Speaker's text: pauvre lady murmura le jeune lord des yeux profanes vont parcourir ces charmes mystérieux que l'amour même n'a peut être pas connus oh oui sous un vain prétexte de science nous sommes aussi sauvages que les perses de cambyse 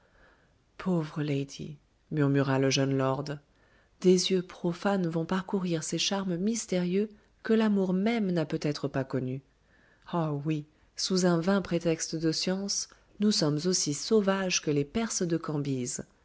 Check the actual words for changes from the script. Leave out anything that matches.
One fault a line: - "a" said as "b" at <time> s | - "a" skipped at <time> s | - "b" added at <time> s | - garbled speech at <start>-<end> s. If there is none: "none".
none